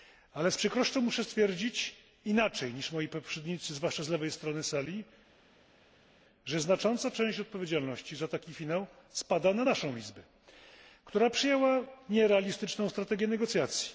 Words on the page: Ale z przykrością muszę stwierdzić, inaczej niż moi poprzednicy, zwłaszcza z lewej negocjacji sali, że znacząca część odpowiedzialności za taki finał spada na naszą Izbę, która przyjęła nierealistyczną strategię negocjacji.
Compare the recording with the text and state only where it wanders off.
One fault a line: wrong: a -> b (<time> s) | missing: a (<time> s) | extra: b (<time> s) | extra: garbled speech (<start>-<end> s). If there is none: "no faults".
wrong: negocjacji -> strony (4.3 s)